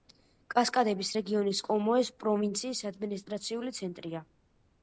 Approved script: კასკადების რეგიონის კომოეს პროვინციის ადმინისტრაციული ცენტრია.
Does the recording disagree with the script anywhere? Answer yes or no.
no